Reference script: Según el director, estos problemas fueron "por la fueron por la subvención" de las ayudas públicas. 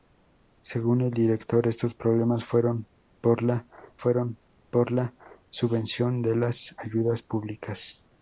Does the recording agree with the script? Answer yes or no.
yes